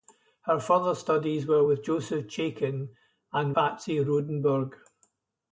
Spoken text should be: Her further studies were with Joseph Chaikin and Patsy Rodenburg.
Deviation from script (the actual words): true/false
false